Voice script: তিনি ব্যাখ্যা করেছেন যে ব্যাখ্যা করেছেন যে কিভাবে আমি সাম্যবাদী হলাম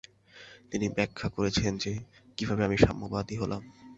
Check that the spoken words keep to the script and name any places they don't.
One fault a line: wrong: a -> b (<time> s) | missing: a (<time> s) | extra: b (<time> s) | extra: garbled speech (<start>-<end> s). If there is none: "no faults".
missing: ব্যাখ্যা করেছেন যে (1.9 s)